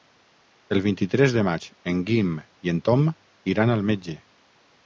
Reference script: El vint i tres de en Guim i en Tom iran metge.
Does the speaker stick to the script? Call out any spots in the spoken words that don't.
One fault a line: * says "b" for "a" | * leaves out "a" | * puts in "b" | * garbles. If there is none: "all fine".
* puts in "maig"
* puts in "al"